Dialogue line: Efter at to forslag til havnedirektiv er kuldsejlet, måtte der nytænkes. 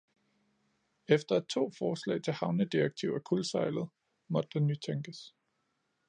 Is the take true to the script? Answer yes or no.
yes